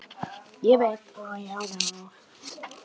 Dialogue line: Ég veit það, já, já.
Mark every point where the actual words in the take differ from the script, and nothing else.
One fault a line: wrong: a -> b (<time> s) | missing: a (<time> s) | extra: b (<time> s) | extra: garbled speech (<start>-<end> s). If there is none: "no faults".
no faults